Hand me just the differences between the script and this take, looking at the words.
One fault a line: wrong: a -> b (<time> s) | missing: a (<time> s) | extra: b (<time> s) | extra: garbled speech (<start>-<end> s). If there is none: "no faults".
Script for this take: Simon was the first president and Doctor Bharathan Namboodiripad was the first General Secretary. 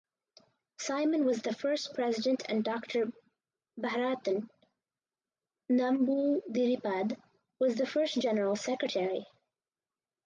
no faults